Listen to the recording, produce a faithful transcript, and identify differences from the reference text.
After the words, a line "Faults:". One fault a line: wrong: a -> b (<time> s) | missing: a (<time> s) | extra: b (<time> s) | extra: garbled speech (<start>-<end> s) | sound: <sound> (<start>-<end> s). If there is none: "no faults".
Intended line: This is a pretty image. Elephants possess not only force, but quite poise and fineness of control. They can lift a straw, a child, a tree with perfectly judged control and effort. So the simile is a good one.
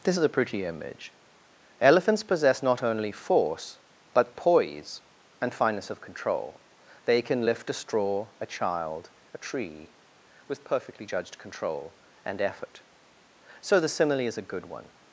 This is a pretty image. Elephants possess not only force, but poise and fineness of control. They can lift a straw, a child, a tree with perfectly judged control and effort. So the simile is a good one.
Faults:
missing: quite (4.4 s)